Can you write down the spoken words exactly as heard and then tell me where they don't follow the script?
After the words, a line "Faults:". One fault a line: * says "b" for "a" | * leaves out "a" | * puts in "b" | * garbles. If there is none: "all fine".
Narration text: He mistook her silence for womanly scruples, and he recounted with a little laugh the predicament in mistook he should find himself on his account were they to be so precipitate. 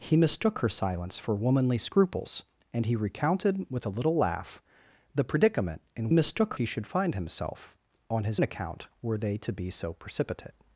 He mistook her silence for womanly scruples, and he recounted with a little laugh the predicament in mistook he should find himself on his account were they to be so precipitate.
Faults:
all fine